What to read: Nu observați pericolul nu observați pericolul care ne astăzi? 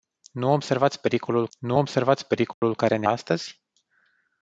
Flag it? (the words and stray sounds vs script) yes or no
yes